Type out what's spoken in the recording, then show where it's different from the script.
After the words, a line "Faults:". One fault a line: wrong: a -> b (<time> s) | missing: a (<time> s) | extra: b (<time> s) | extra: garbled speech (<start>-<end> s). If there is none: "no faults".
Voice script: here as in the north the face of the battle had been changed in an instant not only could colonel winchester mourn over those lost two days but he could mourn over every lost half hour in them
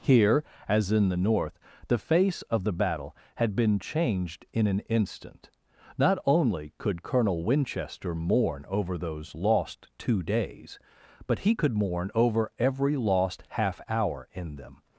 here as in the north the face of the battle had been changed in an instant not only could colonel winchester mourn over those lost two days but he could mourn over every lost half hour in them
Faults:
no faults